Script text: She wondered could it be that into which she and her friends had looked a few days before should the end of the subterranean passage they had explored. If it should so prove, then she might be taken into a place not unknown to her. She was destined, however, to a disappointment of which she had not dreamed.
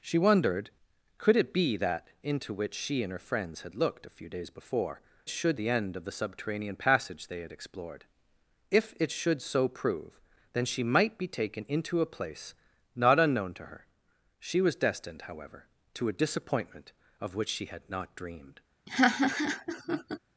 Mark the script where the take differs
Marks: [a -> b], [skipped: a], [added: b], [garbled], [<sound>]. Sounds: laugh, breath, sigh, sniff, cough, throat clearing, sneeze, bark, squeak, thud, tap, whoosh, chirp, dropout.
She wondered could it be that into which she and her friends had looked a few days before should the end of the subterranean passage they had explored. If it should so prove, then she might be taken into a place not unknown to her. She was destined, however, to a disappointment of which she had not dreamed. [laugh]